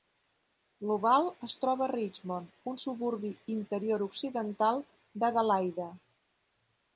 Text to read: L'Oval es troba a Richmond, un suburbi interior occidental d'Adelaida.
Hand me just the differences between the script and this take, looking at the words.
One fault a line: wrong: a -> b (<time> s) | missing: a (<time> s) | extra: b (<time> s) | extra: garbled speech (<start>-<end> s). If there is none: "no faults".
no faults